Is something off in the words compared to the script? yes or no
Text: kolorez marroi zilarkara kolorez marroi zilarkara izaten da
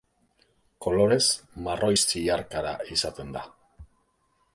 yes